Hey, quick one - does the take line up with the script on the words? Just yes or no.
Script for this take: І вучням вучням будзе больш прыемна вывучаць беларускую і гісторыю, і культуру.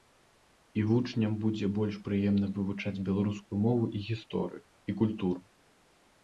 no